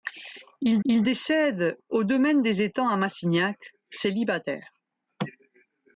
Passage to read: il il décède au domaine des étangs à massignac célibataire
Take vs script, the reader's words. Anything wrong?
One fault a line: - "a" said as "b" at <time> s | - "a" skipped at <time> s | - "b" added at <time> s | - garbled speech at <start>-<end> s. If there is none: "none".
none